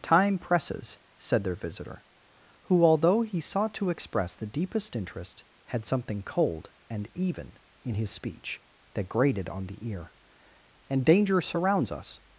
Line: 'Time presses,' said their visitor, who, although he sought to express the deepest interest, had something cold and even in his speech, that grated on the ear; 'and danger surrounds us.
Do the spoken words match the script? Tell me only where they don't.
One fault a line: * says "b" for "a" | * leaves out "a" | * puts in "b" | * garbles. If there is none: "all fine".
all fine